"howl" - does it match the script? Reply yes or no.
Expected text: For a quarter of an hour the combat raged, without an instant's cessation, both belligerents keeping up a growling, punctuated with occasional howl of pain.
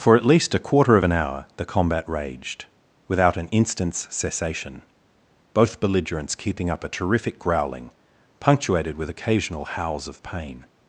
no